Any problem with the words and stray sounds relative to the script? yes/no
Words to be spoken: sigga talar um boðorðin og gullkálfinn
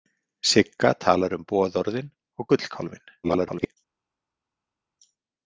yes